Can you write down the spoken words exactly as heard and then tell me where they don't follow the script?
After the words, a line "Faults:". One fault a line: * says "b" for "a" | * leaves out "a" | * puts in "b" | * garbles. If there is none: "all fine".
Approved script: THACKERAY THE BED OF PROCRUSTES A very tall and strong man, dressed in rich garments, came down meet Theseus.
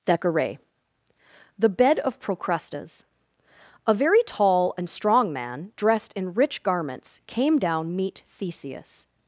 THACKERAY THE BED OF PROCRUSTES A very tall and strong man, dressed in rich garments, came down meet Theseus.
Faults:
all fine